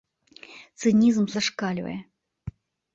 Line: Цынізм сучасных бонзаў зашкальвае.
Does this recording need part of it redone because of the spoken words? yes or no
yes